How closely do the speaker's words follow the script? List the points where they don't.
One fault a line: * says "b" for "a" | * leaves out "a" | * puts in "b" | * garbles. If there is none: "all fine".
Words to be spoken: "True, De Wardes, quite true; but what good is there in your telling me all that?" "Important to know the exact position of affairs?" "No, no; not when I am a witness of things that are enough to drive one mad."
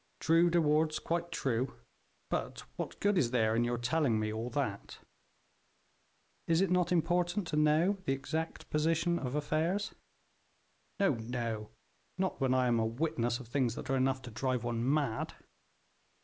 * puts in "Is it not"